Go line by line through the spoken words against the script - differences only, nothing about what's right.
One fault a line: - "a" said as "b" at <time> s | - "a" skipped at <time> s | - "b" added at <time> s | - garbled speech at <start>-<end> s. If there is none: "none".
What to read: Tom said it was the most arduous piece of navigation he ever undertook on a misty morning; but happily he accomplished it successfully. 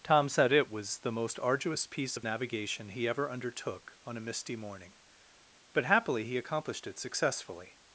none